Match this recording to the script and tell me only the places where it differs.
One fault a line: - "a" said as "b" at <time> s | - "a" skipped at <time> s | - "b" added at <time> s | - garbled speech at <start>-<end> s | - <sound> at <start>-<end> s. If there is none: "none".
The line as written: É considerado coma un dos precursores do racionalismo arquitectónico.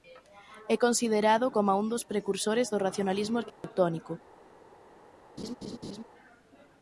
- dropout at 3.5-3.6 s
- laugh at 5.4-6.0 s